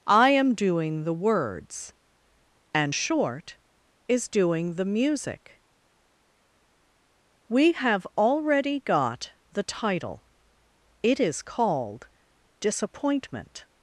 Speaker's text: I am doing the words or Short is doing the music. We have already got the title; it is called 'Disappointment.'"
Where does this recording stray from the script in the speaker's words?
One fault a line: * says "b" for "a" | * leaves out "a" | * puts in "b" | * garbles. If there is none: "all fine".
* says "and" for "or"